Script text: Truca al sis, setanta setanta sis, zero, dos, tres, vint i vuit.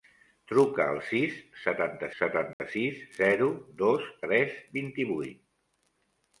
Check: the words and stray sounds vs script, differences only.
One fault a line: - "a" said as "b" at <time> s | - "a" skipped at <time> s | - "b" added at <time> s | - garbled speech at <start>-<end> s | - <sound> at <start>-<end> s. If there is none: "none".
- dropout at 2.5-2.6 s